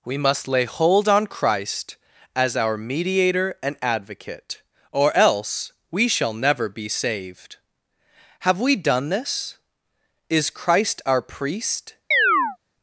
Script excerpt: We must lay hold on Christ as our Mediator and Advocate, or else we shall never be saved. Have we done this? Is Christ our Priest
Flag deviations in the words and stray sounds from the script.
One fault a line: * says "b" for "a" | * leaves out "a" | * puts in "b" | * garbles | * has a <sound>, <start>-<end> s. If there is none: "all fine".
* has a chirp, 12.1-12.6 s